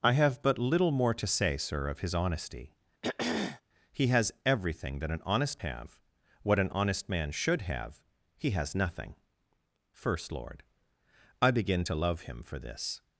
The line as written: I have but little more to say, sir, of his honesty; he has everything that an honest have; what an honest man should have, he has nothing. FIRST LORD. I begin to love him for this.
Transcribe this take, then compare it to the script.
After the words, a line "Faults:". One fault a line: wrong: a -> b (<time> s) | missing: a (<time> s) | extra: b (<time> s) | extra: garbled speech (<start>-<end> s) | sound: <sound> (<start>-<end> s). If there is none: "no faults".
I have but little more to say, sir, of his honesty; he has everything that an honest have; what an honest man should have, he has nothing. FIRST LORD. I begin to love him for this.
Faults:
sound: throat clearing (3.0-3.6 s)